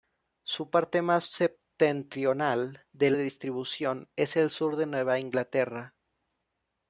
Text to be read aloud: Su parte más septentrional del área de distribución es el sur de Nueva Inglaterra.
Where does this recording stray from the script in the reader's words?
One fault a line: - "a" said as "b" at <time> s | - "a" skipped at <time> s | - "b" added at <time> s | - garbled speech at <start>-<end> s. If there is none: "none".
- "área" skipped at 3.2 s